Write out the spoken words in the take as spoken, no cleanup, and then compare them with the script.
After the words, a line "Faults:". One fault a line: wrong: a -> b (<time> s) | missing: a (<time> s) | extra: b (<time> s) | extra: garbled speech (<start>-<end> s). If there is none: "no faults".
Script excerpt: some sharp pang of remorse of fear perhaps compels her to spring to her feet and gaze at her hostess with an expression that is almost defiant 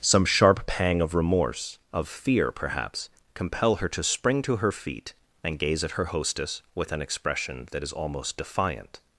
some sharp pang of remorse of fear perhaps compel her to spring to her feet and gaze at her hostess with an expression that is almost defiant
Faults:
wrong: compels -> compel (3.3 s)